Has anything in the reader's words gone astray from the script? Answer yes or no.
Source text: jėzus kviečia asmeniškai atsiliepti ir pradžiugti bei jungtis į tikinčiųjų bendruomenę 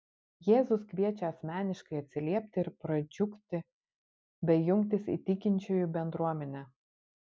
no